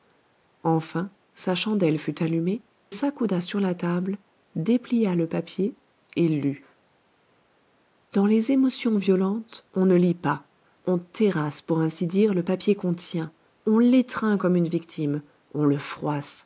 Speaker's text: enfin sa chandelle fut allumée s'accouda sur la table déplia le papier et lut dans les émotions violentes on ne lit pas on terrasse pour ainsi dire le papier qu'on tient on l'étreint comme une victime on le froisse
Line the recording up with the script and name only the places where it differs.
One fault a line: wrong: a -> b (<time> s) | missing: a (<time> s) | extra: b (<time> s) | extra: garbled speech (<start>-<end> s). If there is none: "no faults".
no faults